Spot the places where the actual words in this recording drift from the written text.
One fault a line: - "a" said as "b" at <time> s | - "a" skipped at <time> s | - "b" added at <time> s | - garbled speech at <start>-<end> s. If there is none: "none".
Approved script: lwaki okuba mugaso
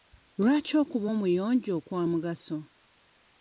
- "omuyonjo kwa" added at 1.1 s